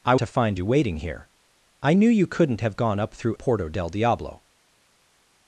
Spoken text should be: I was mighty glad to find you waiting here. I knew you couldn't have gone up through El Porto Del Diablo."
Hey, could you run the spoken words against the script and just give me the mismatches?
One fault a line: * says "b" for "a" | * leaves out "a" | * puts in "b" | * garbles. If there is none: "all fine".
* leaves out "was mighty glad"
* leaves out "El"